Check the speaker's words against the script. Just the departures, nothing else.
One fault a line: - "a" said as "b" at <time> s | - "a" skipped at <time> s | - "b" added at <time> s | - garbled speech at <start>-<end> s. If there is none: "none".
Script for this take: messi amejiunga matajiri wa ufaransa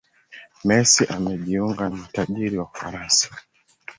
none